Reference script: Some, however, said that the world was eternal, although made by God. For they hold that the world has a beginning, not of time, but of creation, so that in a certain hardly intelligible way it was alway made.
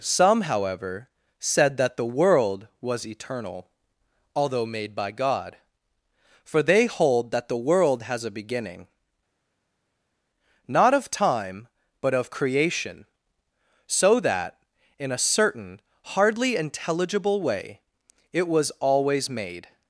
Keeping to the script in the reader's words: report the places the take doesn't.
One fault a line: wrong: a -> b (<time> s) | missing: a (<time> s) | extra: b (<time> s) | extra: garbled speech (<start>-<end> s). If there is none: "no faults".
wrong: alway -> always (18.8 s)